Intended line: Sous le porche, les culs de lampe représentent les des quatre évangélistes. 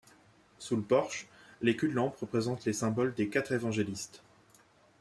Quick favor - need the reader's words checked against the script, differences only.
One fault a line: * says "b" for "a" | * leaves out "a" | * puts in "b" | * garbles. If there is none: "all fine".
* puts in "symboles"